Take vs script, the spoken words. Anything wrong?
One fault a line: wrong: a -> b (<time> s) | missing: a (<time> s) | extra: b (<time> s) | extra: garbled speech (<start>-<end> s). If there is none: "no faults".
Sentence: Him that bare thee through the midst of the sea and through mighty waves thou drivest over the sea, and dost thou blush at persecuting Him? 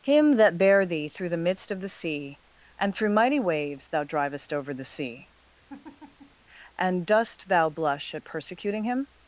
no faults